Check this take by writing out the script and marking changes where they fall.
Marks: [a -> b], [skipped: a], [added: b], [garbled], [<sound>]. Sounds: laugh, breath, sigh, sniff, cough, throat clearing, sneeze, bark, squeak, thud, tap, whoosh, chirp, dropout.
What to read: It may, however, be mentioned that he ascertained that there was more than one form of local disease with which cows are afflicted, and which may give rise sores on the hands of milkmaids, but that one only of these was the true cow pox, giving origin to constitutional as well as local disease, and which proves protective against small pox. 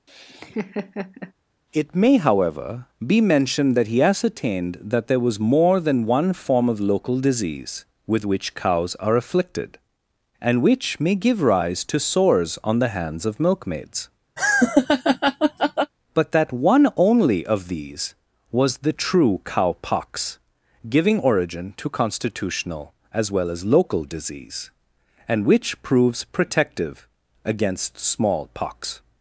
[laugh] It may, however, be mentioned that he ascertained that there was more than one form of local disease with which cows are afflicted, and which may give rise [added: to] sores on the hands of milkmaids, [laugh] but that one only of these was the true cow pox, giving origin to constitutional as well as local disease, and which proves protective against small pox.